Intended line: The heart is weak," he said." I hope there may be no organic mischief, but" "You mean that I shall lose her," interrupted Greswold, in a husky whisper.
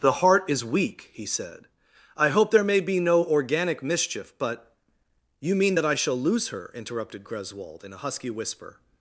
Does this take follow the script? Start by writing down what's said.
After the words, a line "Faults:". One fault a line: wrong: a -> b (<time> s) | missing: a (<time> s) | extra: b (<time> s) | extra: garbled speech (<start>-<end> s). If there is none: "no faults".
The heart is weak," he said." I hope there may be no organic mischief, but" "You mean that I shall lose her," interrupted Greswold, in a husky whisper.
Faults:
no faults